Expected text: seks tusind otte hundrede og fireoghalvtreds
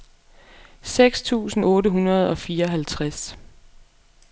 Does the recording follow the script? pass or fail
pass